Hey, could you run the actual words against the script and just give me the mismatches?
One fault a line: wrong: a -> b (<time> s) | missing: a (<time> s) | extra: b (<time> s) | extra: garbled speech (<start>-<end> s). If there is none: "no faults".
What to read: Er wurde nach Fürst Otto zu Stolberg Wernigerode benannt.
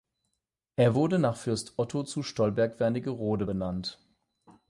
no faults